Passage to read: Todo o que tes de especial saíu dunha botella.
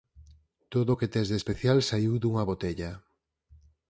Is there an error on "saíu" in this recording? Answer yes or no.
no